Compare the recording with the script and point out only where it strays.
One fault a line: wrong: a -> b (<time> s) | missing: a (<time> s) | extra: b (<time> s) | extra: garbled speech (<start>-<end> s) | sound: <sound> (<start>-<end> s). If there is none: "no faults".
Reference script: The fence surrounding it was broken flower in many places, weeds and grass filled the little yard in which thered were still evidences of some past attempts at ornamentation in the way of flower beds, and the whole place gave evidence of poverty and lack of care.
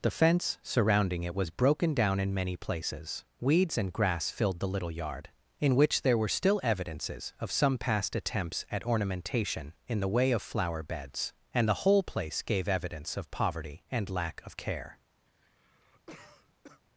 wrong: flower -> down (1.9 s)
wrong: thered -> there (6.0 s)
sound: cough (15.3-16.8 s)